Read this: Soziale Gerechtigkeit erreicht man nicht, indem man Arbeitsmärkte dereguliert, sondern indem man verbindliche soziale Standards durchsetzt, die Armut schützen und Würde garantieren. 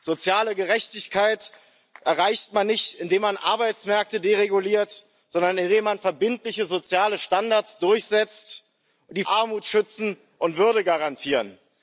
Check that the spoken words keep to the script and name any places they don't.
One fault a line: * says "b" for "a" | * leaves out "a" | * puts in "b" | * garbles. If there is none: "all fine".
all fine